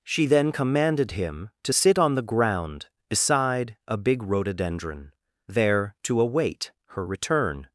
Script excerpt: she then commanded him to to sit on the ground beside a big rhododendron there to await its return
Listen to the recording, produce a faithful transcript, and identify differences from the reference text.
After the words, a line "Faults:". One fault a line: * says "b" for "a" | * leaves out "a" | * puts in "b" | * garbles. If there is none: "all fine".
she then commanded him to sit on the ground beside a big rhododendron there to await her return
Faults:
* leaves out "to"
* says "her" for "its"